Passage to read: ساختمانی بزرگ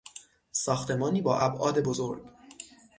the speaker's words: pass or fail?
fail